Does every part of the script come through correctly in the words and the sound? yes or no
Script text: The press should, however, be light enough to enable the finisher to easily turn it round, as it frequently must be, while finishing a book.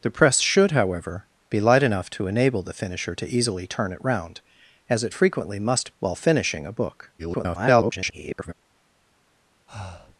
no